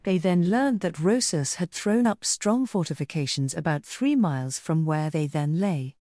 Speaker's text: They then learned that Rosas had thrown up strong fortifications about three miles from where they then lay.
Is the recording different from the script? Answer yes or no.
no